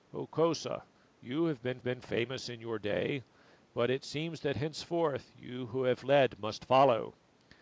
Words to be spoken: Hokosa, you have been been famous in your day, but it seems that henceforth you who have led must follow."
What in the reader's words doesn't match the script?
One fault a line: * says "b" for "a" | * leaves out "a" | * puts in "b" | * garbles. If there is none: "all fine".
all fine